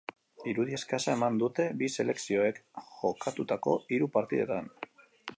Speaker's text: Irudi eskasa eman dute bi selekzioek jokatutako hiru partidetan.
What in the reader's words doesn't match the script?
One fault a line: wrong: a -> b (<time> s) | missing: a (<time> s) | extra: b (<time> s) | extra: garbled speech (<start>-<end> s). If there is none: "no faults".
no faults